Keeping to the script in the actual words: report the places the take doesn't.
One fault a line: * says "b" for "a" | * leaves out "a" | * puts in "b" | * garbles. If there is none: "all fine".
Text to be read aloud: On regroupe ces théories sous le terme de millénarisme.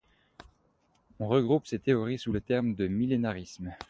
all fine